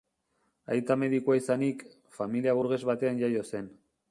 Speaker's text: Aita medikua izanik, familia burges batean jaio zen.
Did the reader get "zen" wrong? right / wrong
right